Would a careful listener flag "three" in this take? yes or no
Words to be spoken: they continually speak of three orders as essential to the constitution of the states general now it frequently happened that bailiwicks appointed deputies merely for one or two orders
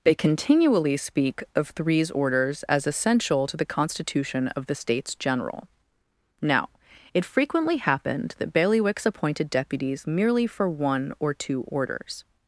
yes